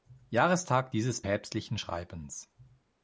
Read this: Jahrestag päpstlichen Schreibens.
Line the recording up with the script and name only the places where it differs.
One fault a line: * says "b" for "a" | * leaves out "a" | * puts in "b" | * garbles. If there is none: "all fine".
* puts in "dieses"